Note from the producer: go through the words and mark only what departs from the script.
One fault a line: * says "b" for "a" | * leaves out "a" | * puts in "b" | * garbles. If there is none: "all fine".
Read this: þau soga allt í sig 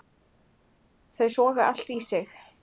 all fine